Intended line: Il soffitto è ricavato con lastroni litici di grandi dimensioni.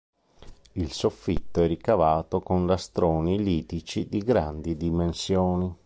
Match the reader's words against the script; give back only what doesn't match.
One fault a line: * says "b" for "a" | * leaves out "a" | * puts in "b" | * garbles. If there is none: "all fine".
all fine